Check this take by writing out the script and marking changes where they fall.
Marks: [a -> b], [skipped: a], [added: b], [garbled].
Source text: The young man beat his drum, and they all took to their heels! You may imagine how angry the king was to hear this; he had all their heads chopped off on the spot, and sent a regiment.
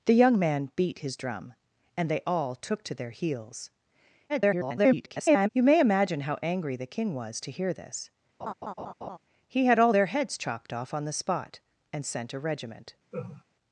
The young man beat his drum, and they all took to their heels! [garbled] You may imagine how angry the king was to hear this; he had all their heads chopped off on the spot, and sent a regiment.